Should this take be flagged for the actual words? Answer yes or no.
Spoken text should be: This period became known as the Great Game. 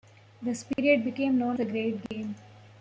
yes